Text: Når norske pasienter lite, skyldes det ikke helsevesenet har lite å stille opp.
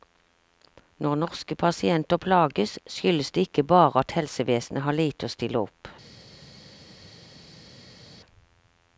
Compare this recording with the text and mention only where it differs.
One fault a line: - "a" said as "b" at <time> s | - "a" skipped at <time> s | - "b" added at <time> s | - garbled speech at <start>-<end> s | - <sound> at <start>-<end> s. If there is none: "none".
- "lite" said as "plages" at 2.2 s
- "bare at" added at 3.7 s